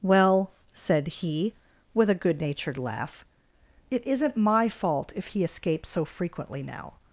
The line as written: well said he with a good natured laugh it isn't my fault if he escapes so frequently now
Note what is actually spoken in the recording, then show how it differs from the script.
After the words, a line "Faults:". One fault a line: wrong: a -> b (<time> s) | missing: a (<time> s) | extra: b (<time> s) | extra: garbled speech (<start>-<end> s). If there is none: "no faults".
well said he with a good natured laugh it isn't my fault if he escapes so frequently now
Faults:
no faults